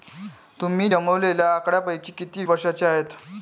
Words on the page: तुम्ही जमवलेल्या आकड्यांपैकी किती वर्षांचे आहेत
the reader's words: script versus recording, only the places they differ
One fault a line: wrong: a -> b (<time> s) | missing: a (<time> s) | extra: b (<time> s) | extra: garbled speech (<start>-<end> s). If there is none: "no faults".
no faults